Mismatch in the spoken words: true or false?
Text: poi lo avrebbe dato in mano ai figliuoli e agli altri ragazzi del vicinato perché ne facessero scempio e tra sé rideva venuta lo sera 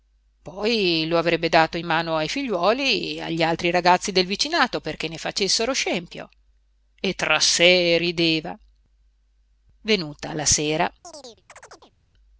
true